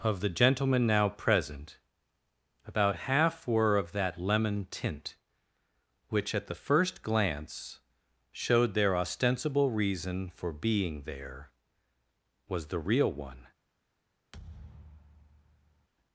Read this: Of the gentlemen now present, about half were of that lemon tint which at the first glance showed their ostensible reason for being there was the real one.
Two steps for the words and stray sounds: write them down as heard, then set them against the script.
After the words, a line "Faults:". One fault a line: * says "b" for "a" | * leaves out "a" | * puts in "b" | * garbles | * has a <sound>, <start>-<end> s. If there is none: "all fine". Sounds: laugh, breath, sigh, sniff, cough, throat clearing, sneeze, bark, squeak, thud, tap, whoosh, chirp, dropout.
Of the gentlemen now present, about half were of that lemon tint which at the first glance showed their ostensible reason for being there was the real one.
Faults:
* has a thud, 14.3-15.9 s